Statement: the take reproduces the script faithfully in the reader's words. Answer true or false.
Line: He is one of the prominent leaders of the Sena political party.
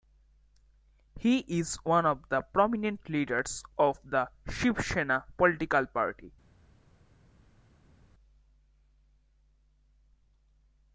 false